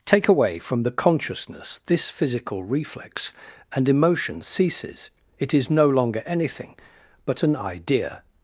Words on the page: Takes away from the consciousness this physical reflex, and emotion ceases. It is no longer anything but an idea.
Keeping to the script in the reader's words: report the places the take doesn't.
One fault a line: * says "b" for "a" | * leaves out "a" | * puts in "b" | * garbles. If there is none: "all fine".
* says "Take" for "Takes"